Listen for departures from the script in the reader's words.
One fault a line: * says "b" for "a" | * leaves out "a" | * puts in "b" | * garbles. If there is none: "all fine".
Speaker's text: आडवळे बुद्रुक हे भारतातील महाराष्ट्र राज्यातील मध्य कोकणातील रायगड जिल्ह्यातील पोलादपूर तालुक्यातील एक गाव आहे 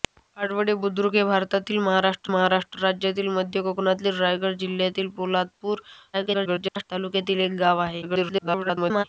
* puts in "महाराष्ट्र"
* garbles
* garbles